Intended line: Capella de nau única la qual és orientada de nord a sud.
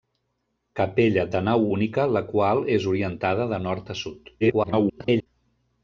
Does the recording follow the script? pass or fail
fail